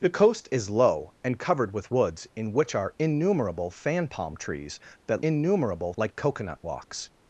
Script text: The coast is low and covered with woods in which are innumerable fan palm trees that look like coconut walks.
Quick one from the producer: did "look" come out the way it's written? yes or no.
no